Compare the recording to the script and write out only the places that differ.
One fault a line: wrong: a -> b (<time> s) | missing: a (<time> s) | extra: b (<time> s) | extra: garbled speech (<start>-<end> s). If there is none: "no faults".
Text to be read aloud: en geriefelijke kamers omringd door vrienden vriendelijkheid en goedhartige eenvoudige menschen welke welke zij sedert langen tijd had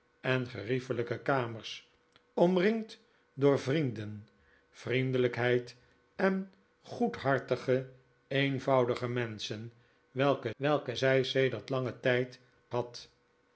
no faults